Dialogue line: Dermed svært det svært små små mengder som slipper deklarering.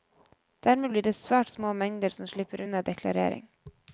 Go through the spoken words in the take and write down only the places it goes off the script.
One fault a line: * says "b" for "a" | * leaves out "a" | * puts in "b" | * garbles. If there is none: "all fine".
* says "blir" for "svært"
* leaves out "små"
* puts in "unna"